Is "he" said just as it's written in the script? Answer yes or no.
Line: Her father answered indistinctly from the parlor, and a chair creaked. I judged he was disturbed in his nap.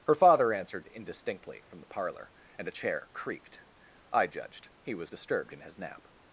yes